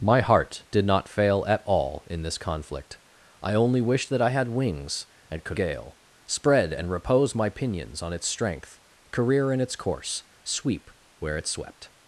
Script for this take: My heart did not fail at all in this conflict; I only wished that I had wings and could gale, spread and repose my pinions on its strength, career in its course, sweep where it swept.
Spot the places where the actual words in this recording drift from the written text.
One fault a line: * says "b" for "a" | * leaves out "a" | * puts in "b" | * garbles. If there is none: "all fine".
all fine